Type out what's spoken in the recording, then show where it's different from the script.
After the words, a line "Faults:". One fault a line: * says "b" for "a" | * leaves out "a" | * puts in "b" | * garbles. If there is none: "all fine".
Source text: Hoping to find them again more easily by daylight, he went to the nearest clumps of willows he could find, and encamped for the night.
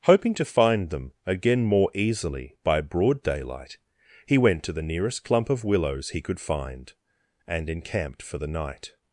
Hoping to find them again more easily by broad daylight, he went to the nearest clump of willows he could find, and encamped for the night.
Faults:
* puts in "broad"
* says "clump" for "clumps"